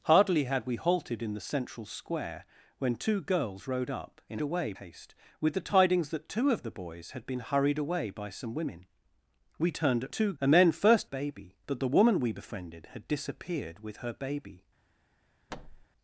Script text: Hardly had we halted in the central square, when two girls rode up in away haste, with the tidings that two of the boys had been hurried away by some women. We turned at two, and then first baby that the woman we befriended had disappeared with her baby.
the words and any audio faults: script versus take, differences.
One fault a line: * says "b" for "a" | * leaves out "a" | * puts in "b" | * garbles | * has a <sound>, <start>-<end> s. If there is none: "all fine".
* has a thud, 15.5-15.9 s